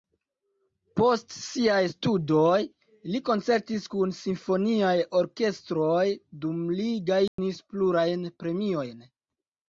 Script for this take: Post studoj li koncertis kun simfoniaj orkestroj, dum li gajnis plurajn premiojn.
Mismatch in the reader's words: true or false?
true